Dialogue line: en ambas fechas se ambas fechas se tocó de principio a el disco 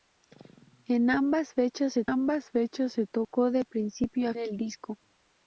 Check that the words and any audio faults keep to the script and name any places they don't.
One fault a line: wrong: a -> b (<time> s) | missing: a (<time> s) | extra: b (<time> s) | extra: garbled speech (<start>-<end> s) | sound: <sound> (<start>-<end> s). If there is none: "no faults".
no faults